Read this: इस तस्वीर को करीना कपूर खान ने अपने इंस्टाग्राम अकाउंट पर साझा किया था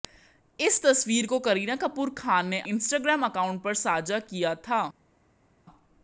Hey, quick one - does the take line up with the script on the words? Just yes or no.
no